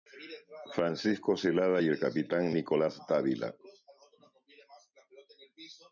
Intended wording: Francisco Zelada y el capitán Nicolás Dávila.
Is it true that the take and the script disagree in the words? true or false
false